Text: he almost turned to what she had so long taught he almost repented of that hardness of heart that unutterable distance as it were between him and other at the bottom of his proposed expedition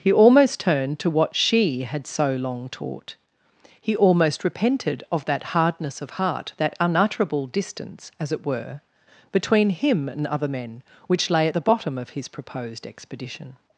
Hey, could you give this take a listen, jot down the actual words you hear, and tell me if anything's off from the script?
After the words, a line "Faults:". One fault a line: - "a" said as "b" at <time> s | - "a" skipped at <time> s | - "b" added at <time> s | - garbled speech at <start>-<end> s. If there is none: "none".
he almost turned to what she had so long taught he almost repented of that hardness of heart that unutterable distance as it were between him and other men which lay at the bottom of his proposed expedition
Faults:
- "men which lay" added at 10.5 s